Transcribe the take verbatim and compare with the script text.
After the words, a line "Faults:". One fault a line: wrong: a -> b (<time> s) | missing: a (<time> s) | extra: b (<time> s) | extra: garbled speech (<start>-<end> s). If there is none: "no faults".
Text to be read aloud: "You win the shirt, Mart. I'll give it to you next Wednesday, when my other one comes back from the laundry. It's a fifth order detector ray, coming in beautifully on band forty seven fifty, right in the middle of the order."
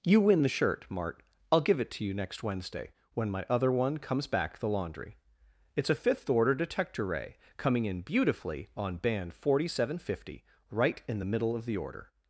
"You win the shirt, Mart. I'll give it to you next Wednesday, when my other one comes back the laundry. It's a fifth order detector ray, coming in beautifully on band forty seven fifty, right in the middle of the order."
Faults:
missing: from (4.6 s)